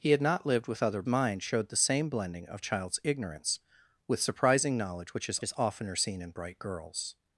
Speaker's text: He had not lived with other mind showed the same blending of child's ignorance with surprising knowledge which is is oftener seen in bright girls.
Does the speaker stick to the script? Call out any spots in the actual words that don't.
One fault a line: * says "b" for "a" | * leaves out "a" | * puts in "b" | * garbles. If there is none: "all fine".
all fine